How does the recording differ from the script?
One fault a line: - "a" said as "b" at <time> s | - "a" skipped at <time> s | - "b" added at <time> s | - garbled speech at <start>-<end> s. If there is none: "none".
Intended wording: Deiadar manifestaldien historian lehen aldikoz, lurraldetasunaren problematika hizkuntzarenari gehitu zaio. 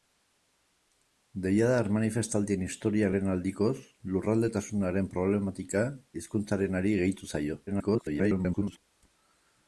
- garbled speech at 7.7-8.8 s